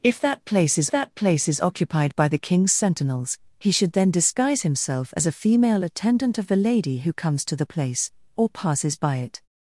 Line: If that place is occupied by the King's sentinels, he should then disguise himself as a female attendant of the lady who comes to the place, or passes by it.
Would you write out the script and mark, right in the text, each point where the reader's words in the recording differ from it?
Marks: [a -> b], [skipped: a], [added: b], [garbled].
If that place is [added: that place is] occupied by the King's sentinels, he should then disguise himself as a female attendant of the lady who comes to the place, or passes by it.